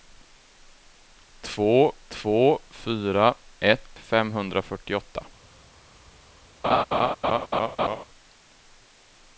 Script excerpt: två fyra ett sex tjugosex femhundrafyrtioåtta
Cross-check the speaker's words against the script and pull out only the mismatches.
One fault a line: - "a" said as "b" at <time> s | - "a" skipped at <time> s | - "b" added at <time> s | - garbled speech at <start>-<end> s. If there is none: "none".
- "två" added at 2.1 s
- "sex tjugosex" skipped at 4.0 s